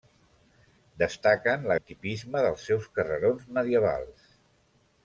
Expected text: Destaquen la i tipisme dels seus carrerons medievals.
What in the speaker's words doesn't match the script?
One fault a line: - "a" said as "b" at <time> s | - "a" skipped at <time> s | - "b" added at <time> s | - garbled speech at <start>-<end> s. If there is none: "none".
none